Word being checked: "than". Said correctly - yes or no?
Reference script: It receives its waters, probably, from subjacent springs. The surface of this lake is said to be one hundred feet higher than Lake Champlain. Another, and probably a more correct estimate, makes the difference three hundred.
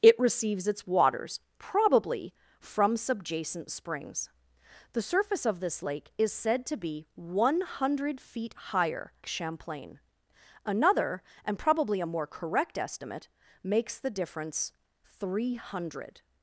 no